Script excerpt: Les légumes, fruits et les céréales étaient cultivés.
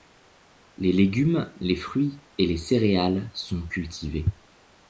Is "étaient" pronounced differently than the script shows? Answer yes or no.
yes